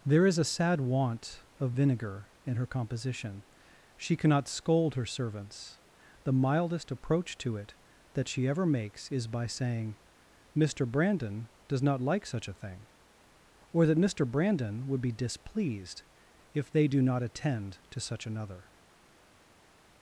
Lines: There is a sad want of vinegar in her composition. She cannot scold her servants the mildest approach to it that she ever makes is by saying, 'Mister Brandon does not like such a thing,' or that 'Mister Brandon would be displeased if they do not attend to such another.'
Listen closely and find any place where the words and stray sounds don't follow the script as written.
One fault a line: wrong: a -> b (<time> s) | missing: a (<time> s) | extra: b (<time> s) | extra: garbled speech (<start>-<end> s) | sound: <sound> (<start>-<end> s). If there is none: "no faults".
no faults